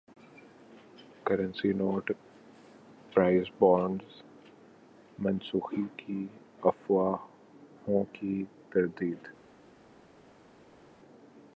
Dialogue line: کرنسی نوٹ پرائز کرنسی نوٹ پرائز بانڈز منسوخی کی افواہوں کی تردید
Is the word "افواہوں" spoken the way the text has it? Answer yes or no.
yes